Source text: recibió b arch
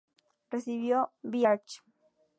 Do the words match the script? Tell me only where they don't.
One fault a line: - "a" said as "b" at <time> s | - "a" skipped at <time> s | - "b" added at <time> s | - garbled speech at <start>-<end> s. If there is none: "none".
none